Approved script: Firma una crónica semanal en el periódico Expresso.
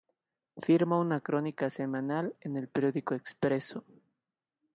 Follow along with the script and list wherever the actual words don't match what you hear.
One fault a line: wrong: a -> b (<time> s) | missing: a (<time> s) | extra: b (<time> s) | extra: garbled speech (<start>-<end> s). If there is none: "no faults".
no faults